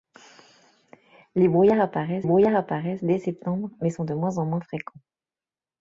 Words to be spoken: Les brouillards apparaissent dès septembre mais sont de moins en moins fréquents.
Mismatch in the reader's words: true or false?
true